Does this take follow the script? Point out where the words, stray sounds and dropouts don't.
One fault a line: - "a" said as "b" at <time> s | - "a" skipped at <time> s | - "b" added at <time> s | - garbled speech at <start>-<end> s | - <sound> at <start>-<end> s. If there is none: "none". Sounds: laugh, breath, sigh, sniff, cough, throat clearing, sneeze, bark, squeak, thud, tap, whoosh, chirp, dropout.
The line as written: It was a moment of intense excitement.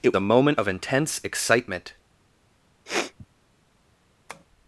- "was" skipped at 0.1 s
- sniff at 2.9-3.3 s
- tap at 4.3-4.5 s